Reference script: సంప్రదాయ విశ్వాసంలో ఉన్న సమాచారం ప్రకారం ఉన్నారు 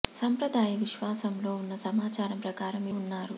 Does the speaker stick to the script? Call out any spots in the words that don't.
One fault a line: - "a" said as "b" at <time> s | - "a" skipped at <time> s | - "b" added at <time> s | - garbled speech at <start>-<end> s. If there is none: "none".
none